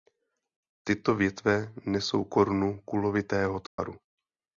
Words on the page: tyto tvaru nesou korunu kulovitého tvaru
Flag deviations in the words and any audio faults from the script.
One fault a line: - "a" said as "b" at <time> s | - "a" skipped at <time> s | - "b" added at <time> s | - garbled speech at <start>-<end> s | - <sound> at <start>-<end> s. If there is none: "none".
- "tvaru" said as "větve" at 1.1 s
- dropout at 3.7-3.8 s